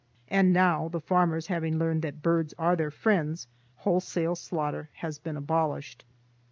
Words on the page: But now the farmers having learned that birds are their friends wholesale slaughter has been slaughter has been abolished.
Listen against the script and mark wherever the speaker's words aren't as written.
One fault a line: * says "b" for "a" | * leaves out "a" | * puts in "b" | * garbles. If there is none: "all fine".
* says "And" for "But"
* leaves out "slaughter has been"